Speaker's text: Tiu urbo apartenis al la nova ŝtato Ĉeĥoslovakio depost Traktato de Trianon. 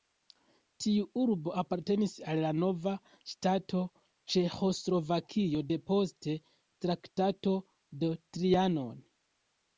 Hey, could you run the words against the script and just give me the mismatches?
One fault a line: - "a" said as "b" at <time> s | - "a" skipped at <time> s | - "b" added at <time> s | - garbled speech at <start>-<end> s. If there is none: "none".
none